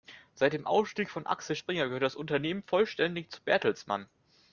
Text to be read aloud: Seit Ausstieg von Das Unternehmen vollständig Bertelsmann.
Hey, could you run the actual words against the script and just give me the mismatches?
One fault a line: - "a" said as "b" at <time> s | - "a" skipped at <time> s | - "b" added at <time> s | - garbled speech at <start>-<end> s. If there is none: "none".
- "dem" added at 0.5 s
- "Axel Springer gehört" added at 1.3 s
- "zu" added at 3.3 s